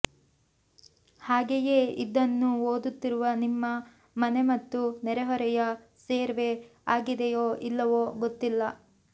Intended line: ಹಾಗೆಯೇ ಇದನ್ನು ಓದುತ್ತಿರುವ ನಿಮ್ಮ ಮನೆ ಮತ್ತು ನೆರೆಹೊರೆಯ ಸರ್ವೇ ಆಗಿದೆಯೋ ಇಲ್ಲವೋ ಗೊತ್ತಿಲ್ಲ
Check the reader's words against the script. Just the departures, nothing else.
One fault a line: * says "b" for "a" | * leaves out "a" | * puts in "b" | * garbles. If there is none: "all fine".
all fine